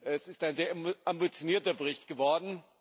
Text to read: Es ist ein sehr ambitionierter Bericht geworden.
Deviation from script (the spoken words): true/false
false